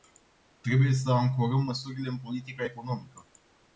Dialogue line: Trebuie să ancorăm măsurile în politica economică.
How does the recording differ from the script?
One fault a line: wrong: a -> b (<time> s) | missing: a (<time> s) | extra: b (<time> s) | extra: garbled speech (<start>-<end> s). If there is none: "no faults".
no faults